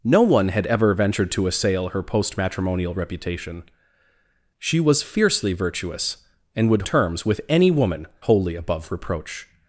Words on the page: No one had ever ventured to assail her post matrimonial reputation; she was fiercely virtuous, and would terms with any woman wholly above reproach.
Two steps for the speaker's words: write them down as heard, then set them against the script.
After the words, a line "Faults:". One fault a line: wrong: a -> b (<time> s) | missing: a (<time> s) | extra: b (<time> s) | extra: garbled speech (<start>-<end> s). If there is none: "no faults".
No one had ever ventured to assail her post matrimonial reputation; she was fiercely virtuous, and would terms with any woman wholly above reproach.
Faults:
no faults